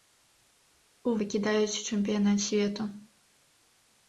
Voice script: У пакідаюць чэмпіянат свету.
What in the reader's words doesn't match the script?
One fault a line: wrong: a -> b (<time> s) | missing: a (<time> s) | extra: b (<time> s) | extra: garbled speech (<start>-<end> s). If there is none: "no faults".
no faults